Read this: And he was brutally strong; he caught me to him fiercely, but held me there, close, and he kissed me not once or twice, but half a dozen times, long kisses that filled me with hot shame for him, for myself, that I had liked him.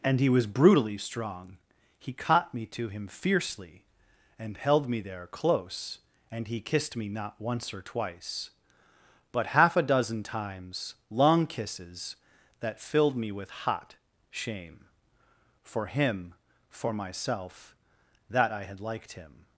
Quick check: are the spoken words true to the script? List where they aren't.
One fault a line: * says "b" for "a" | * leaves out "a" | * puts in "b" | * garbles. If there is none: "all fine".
* says "and" for "but"